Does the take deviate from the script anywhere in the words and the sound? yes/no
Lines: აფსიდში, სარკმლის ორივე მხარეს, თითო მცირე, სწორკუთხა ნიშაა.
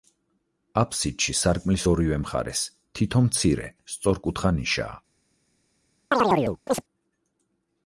yes